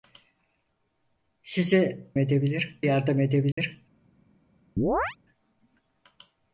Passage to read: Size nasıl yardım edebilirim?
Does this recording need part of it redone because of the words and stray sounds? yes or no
yes